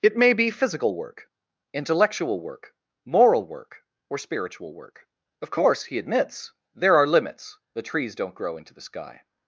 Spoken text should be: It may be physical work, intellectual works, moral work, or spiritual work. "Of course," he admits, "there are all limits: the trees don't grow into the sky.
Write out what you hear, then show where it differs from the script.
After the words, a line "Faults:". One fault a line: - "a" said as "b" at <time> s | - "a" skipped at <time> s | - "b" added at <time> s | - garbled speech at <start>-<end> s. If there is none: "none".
It may be physical work, intellectual work, moral work, or spiritual work. "Of course," he admits, "there are limits: the trees don't grow into the sky.
Faults:
- "works" said as "work" at 2.4 s
- "all" skipped at 7.0 s